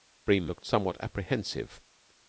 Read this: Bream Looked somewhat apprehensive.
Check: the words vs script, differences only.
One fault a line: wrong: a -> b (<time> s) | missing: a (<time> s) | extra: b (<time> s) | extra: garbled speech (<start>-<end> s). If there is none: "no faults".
no faults